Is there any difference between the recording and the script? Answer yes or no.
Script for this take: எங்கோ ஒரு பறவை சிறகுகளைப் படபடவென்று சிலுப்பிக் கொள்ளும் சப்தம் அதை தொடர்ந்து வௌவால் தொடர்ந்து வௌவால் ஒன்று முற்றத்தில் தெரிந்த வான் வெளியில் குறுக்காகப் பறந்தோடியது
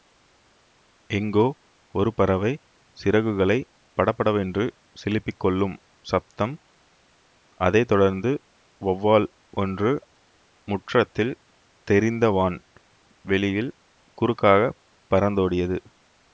yes